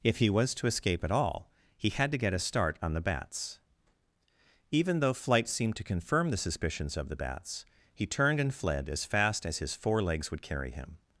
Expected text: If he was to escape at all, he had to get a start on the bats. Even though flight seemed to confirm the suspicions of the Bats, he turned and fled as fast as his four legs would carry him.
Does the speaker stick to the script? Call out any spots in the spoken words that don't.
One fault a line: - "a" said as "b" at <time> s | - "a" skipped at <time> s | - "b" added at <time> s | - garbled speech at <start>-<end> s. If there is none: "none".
none